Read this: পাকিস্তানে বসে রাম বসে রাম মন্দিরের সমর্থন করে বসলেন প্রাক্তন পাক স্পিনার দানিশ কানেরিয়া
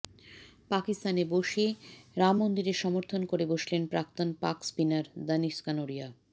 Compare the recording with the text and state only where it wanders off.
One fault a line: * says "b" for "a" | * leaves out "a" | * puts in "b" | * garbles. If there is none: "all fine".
* leaves out "বসে রাম"